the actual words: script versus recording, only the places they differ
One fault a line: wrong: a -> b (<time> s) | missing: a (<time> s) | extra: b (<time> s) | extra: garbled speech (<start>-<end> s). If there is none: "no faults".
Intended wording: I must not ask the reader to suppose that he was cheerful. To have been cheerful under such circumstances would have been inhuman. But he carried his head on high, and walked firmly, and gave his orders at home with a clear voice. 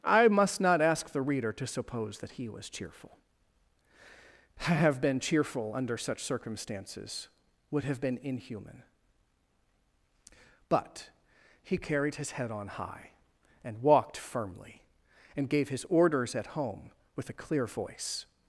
no faults